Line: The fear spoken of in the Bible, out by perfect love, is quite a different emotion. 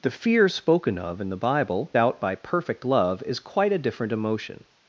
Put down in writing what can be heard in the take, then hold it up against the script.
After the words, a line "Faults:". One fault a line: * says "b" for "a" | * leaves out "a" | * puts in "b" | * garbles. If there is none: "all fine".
The fear spoken of in the Bible, out by perfect love, is quite a different emotion.
Faults:
all fine